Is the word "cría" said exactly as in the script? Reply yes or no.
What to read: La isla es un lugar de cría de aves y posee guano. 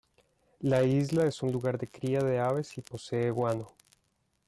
yes